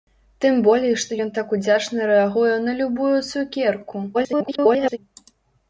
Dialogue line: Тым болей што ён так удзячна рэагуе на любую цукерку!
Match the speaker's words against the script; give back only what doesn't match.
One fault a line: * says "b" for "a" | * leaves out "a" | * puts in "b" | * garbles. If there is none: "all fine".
* garbles